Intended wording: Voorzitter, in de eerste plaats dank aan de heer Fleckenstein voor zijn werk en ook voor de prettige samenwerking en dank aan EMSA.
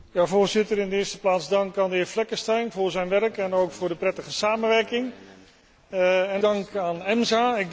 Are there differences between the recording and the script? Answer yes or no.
no